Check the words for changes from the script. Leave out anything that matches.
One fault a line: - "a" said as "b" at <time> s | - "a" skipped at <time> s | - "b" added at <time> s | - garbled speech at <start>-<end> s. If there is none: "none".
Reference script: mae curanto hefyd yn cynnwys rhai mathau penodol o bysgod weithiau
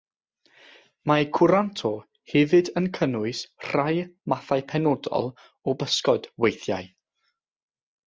none